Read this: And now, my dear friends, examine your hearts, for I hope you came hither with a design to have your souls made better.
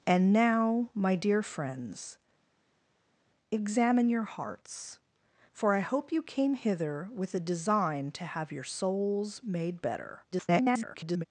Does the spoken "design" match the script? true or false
true